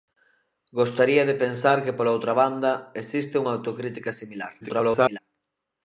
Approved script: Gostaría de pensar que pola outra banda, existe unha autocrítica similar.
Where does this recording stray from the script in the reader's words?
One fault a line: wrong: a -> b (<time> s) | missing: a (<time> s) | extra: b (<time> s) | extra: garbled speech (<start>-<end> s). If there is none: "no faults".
extra: garbled speech (4.6-5.2 s)